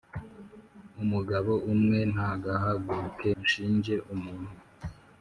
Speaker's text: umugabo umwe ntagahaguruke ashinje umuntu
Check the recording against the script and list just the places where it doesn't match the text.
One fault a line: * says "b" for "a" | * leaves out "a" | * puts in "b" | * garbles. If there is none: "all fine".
all fine